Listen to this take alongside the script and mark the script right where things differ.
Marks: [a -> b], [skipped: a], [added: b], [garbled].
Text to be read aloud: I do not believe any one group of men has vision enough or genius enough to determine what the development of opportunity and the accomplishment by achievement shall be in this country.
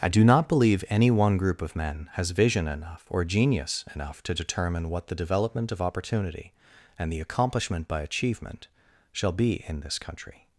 I do not believe any one group of men has vision enough or genius enough to determine what the development of opportunity and the accomplishment by achievement shall be in this country.